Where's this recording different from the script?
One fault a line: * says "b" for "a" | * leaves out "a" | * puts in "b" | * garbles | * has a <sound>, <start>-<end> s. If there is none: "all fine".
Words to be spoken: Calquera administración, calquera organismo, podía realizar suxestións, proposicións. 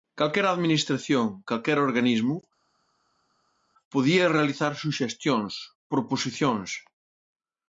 all fine